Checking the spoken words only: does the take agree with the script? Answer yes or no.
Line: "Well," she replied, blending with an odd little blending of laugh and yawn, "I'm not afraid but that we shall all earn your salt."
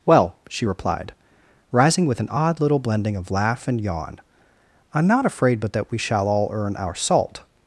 no